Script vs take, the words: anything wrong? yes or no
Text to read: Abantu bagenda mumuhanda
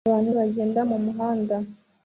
no